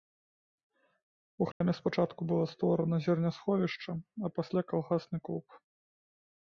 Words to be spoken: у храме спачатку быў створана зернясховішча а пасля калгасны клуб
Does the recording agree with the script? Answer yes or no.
no